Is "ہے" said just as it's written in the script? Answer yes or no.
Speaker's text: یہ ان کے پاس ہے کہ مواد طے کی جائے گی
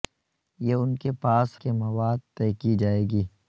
no